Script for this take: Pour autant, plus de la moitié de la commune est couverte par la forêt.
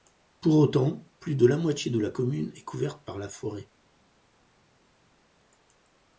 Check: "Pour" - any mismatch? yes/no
no